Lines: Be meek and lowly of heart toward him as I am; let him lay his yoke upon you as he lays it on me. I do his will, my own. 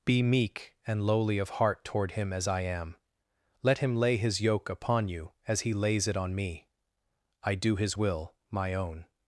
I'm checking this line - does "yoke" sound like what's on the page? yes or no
yes